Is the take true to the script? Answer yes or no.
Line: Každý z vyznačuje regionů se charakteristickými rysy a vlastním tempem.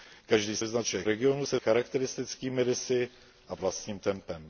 yes